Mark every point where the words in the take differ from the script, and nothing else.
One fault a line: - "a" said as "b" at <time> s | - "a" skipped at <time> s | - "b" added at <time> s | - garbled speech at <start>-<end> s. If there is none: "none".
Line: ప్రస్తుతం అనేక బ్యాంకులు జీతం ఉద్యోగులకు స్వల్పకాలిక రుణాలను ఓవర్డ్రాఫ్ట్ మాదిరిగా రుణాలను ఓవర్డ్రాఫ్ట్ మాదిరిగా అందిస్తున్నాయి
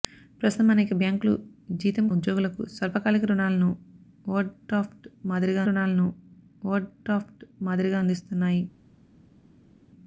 none